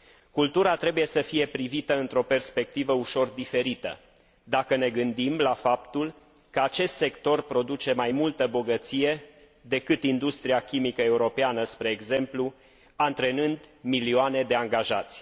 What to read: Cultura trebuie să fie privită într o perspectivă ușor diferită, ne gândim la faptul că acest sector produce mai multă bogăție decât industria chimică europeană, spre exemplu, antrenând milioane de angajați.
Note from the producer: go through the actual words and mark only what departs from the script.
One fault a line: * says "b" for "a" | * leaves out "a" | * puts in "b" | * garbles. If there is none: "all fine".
* puts in "dacă"